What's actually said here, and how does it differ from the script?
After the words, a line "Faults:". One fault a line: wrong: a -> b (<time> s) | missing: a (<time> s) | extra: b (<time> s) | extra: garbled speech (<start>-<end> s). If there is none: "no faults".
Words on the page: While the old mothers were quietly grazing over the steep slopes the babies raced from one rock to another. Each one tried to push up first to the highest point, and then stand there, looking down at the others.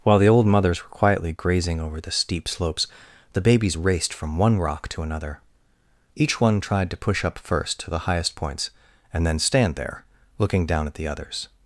While the old mothers were quietly grazing over the steep slopes the babies raced from one rock to another. Each one tried to push up first to the highest points, and then stand there, looking down at the others.
Faults:
wrong: point -> points (8.3 s)